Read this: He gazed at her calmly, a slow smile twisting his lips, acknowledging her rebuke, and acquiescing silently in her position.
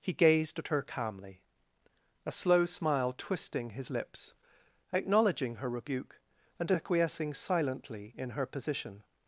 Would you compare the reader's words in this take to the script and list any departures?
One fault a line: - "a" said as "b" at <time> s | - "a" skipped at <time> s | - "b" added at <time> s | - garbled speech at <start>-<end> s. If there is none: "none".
none